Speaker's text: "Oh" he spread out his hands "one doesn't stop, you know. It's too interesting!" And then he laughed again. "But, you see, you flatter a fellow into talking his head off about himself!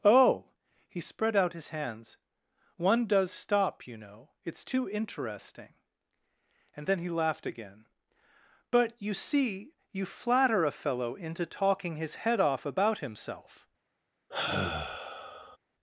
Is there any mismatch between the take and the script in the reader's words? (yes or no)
yes